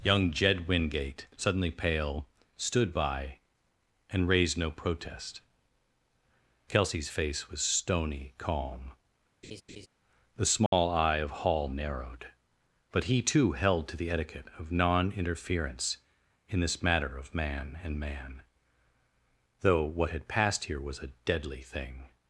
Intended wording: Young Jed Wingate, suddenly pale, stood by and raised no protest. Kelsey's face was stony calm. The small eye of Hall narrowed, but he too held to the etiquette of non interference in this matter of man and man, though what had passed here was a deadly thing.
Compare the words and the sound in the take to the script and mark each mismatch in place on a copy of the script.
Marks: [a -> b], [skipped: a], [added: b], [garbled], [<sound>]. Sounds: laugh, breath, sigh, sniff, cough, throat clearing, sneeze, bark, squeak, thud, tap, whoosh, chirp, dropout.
Young Jed Wingate, suddenly pale, stood by and raised no protest. Kelsey's face was stony calm. [laugh] The small [dropout] eye of Hall narrowed, but he too held to the etiquette of non interference in this matter of man and man, though what had passed here was a deadly thing.